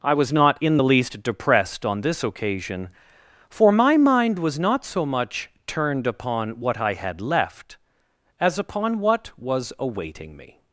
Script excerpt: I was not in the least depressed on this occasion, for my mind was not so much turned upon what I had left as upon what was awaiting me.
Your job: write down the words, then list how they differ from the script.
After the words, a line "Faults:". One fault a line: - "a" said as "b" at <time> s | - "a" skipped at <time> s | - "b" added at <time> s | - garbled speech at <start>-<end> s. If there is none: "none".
I was not in the least depressed on this occasion, for my mind was not so much turned upon what I had left as upon what was awaiting me.
Faults:
none